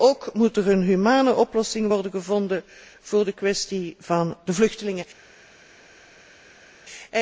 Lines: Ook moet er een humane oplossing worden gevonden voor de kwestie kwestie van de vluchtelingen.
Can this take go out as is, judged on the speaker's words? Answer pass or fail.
fail